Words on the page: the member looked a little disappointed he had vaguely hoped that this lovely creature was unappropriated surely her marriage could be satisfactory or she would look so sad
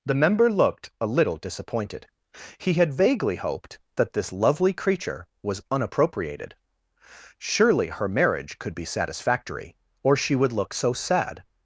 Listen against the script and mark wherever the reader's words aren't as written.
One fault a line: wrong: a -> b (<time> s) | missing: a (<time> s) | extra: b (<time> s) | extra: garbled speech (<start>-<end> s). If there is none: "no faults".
no faults